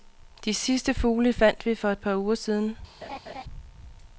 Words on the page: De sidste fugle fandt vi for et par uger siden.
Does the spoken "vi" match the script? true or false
true